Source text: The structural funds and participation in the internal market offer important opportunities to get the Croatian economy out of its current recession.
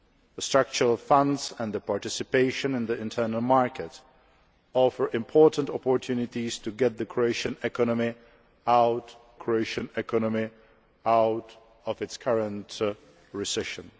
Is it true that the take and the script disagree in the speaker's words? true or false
true